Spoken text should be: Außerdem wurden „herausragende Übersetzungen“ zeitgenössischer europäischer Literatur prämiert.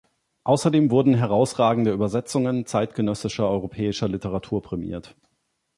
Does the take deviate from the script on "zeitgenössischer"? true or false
false